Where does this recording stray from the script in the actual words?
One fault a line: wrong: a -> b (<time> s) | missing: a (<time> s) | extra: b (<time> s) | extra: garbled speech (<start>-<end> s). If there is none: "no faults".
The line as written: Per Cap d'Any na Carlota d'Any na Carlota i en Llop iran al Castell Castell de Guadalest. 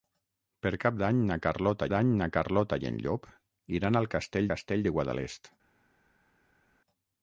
no faults